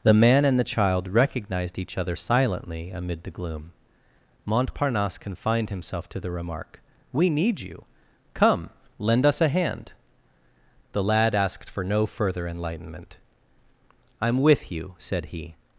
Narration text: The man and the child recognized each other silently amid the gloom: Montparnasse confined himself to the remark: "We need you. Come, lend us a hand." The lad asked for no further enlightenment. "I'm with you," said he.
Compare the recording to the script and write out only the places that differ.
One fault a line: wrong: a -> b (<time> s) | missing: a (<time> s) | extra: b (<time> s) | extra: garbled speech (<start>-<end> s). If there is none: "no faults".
no faults